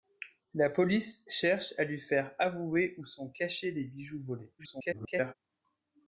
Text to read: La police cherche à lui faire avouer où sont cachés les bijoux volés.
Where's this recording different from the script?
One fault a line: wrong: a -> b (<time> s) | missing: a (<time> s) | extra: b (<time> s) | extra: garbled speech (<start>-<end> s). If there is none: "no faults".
extra: garbled speech (4.6-5.3 s)